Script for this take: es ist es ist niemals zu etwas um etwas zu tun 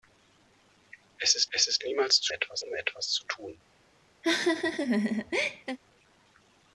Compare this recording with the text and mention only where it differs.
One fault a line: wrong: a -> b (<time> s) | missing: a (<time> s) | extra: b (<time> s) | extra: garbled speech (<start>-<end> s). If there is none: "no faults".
no faults